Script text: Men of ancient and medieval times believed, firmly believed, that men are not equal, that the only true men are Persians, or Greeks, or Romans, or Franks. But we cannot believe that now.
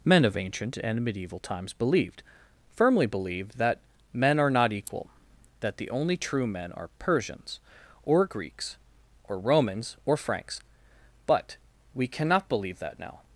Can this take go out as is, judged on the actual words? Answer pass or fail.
pass